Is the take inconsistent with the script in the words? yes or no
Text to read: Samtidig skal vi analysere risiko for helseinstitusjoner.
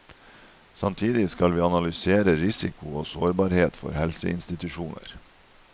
yes